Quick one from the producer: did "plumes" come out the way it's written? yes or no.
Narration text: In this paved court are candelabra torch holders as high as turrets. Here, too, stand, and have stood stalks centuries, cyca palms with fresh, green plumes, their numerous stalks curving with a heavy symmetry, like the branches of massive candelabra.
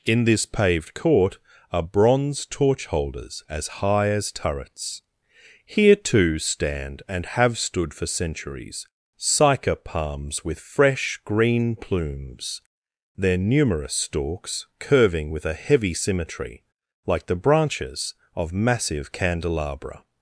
yes